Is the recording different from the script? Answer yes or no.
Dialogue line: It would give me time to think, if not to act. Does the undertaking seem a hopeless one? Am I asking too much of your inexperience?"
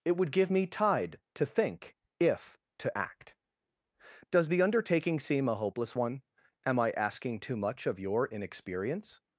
yes